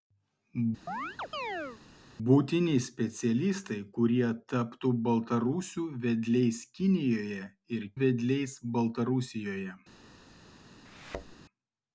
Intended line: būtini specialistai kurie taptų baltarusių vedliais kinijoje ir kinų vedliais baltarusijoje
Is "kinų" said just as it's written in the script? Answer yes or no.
no